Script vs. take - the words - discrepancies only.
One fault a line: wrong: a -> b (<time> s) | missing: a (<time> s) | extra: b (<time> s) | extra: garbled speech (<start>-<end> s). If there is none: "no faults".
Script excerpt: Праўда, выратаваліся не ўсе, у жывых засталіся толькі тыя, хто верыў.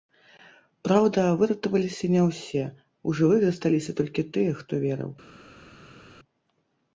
no faults